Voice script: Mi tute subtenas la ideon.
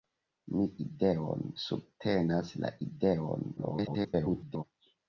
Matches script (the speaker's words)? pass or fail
fail